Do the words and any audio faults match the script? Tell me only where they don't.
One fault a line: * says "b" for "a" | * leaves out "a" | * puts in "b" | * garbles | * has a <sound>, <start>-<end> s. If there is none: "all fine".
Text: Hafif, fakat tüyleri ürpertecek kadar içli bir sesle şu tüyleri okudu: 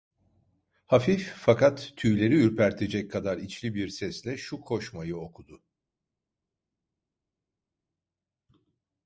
* says "koşmayı" for "tüyleri"